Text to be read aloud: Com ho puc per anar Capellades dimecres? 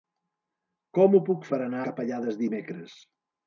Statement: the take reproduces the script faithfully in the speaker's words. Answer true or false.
true